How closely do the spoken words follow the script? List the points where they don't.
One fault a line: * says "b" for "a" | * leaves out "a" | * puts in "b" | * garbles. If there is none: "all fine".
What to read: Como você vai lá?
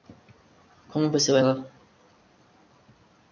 all fine